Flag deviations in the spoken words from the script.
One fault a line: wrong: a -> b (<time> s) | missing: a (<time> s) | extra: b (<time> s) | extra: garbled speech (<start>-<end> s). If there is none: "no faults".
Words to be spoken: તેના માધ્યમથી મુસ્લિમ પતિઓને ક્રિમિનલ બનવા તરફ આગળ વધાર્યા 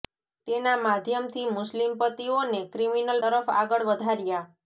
missing: બનવા (3.2 s)